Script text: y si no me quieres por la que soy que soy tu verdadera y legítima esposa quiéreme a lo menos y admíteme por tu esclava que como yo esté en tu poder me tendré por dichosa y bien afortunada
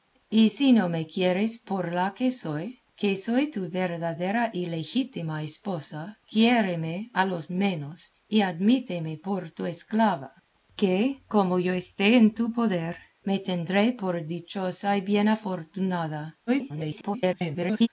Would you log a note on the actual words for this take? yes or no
yes